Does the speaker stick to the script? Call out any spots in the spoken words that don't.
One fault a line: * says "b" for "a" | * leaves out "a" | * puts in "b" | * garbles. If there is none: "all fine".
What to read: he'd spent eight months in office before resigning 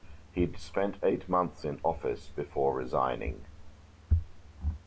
all fine